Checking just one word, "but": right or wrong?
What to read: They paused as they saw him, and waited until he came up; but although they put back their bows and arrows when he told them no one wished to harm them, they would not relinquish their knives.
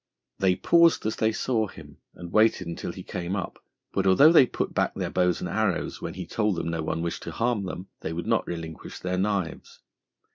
right